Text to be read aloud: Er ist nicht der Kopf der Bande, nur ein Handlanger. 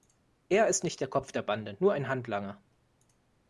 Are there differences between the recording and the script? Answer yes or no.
no